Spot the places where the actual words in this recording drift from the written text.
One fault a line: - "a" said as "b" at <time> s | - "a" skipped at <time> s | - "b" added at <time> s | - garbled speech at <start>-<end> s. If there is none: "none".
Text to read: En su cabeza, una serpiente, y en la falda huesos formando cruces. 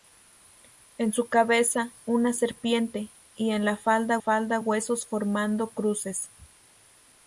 - "falda" added at 4.2 s